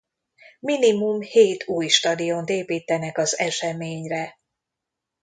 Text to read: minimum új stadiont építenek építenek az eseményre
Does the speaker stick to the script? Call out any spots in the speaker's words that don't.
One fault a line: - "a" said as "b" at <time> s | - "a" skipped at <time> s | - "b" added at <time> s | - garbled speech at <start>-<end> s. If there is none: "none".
- "hét" added at 1.2 s
- "építenek" skipped at 3.2 s